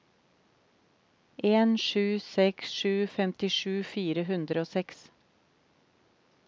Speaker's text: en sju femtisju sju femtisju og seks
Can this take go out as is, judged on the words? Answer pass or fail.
fail